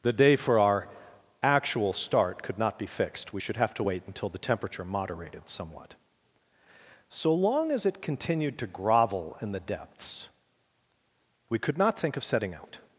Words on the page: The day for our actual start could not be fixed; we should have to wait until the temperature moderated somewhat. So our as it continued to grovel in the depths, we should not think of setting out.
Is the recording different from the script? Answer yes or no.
yes